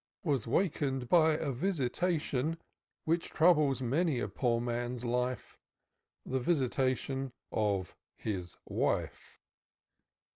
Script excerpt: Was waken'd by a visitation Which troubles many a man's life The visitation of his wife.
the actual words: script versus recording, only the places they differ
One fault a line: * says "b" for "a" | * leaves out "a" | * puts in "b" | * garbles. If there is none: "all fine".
* puts in "poor"